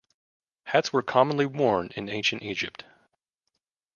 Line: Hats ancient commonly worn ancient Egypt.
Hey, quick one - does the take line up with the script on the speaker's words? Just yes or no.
no